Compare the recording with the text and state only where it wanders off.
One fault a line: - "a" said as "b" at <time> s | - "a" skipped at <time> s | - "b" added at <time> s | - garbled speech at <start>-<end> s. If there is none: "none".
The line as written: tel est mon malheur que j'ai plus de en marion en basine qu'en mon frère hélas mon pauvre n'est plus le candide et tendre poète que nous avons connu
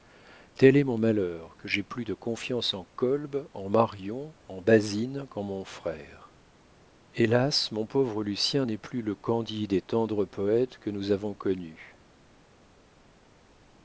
- "confiance" added at 2.1 s
- "kolb en" added at 3.0 s
- "lucien" added at 8.2 s